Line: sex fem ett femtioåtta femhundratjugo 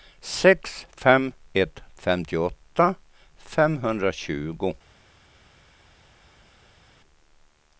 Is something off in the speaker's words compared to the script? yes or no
no